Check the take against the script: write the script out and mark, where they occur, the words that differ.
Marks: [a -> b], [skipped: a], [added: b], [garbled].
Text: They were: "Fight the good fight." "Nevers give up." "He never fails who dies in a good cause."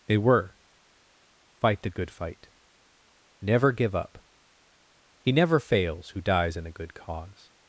They were: "Fight the good fight." ["Nevers -> Never] give up." "He never fails who dies in a good cause."